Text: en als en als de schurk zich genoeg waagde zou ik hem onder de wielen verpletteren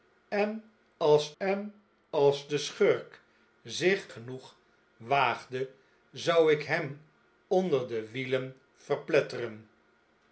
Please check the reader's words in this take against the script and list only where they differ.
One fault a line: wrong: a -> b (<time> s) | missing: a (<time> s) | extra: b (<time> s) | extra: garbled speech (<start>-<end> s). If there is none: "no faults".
no faults